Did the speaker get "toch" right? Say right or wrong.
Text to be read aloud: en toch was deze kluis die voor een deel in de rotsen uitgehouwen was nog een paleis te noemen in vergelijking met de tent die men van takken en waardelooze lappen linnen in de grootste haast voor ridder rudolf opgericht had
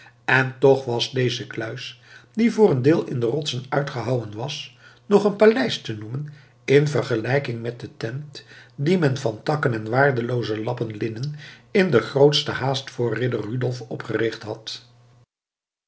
right